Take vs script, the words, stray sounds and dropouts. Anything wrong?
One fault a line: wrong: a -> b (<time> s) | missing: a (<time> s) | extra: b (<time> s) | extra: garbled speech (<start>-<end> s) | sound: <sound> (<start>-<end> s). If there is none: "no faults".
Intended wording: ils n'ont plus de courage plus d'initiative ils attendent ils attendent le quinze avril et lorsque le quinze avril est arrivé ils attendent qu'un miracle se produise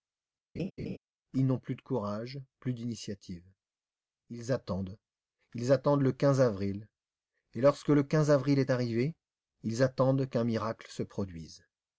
sound: laugh (0.6-1.0 s)